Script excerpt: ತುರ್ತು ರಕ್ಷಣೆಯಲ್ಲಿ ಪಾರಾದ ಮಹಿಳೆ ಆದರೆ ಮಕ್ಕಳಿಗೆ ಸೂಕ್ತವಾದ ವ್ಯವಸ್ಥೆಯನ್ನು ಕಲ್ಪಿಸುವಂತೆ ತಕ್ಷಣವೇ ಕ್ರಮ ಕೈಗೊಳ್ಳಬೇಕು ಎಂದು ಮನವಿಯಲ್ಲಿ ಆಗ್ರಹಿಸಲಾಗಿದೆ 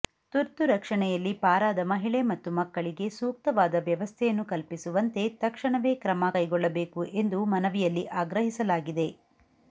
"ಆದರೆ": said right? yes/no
no